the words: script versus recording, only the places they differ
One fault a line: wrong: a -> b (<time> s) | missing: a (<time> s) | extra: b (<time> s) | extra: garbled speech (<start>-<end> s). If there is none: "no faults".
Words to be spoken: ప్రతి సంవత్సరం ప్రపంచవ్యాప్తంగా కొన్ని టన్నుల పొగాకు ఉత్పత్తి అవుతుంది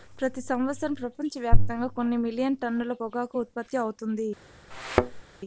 extra: మిలియన్ (2.2 s)